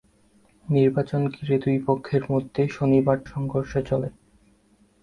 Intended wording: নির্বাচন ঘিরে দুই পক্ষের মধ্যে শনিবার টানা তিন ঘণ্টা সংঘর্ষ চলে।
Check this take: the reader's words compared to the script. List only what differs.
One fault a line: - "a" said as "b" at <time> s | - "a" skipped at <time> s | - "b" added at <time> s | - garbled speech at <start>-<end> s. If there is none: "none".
- "টানা তিন ঘণ্টা" skipped at 3.2 s